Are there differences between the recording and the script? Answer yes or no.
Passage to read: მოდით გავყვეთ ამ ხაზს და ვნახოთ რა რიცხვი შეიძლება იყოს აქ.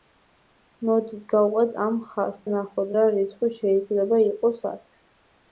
yes